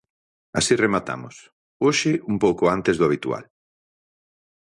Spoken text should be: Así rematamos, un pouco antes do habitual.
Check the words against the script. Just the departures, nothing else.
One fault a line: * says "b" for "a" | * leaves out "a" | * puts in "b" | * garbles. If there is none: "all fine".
* puts in "hoxe"